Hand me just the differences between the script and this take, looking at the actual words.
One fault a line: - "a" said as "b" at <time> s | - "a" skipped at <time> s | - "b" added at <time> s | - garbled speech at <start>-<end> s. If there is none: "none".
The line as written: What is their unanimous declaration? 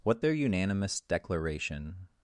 - "is" skipped at 0.2 s